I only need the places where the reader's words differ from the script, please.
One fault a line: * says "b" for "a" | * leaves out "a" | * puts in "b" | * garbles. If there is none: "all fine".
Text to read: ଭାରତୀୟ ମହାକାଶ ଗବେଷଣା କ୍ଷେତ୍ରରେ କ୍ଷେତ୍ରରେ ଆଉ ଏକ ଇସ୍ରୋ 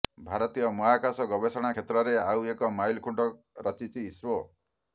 * leaves out "କ୍ଷେତ୍ରରେ"
* puts in "ମାଇଲଖୁଣ୍ଟ ରଚିଛି"